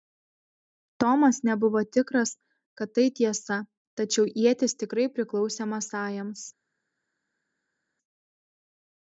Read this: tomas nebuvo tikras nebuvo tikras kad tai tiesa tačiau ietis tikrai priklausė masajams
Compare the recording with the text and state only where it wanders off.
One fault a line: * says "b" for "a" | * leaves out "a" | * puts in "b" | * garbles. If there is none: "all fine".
* leaves out "nebuvo tikras"